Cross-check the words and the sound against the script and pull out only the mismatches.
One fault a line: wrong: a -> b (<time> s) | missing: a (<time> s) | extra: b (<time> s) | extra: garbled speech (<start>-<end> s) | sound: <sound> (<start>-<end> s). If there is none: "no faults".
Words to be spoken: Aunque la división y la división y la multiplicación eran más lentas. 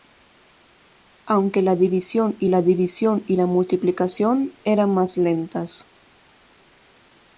no faults